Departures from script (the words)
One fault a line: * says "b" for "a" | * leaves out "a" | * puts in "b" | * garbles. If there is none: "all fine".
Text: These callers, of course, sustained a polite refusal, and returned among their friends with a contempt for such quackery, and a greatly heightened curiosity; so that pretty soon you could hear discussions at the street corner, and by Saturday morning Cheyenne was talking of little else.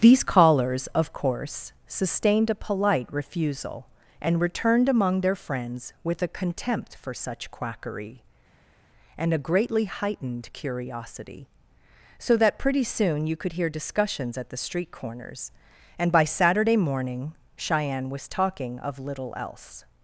* says "corners" for "corner"